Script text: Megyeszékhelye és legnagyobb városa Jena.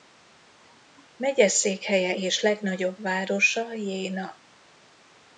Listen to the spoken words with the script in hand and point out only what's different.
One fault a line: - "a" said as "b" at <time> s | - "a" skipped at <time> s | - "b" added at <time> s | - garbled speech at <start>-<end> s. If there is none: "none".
none